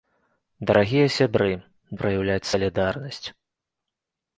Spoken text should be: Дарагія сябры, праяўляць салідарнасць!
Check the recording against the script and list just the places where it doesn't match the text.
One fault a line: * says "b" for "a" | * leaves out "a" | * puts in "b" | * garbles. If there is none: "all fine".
all fine